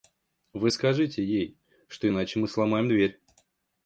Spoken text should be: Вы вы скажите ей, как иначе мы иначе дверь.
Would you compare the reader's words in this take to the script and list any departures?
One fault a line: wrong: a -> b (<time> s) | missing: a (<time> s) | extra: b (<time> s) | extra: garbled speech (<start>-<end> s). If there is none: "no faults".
missing: вы (0.7 s)
wrong: как -> что (1.9 s)
wrong: иначе -> сломаем (2.5 s)